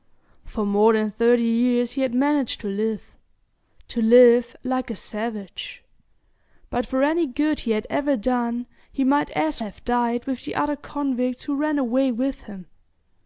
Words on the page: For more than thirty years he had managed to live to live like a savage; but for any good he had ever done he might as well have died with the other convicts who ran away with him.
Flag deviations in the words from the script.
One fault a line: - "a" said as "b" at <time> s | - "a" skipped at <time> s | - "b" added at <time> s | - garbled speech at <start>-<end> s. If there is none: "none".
- "well" skipped at 9.6 s